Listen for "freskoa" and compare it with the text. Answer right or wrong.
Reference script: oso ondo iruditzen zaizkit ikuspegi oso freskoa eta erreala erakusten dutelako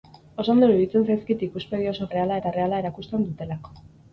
wrong